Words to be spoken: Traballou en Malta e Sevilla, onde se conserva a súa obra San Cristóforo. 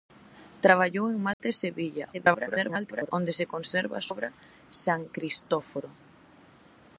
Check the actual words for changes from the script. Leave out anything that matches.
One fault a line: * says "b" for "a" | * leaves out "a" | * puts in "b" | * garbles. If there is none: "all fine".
* garbles
* leaves out "súa"